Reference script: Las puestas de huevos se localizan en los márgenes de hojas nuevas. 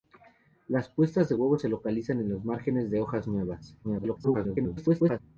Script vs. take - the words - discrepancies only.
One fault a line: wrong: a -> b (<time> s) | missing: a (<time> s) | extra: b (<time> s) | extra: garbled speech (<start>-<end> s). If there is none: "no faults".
extra: garbled speech (3.8-5.2 s)